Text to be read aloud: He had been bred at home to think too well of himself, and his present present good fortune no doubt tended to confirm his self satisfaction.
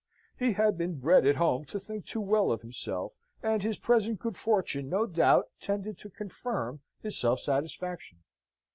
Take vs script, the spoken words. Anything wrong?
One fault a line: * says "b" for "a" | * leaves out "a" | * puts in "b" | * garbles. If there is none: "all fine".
* leaves out "present"